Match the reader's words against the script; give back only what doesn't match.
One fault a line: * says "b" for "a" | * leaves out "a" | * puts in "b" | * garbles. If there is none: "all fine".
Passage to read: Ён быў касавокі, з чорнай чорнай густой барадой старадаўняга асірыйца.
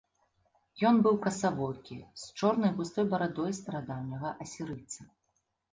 * leaves out "чорнай"